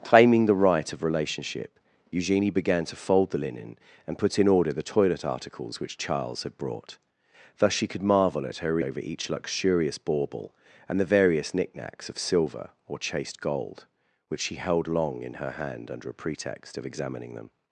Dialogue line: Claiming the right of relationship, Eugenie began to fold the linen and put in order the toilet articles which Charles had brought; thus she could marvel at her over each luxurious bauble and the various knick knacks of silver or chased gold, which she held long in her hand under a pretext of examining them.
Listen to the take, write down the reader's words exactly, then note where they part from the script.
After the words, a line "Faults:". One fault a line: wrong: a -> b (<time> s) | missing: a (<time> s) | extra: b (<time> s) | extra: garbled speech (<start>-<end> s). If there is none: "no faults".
Claiming the right of relationship, Eugenie began to fold the linen and put in order the toilet articles which Charles had brought; thus she could marvel at her over each luxurious bauble and the various knick knacks of silver or chased gold, which she held long in her hand under a pretext of examining them.
Faults:
no faults